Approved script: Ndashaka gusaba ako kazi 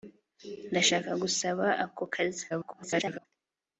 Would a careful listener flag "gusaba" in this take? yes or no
no